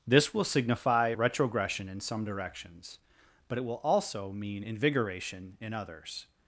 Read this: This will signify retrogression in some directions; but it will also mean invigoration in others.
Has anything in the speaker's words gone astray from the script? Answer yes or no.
no